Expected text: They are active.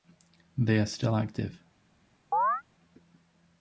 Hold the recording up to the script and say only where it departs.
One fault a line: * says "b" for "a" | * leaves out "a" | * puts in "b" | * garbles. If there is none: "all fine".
* puts in "still"